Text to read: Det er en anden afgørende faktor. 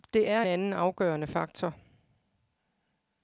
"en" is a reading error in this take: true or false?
true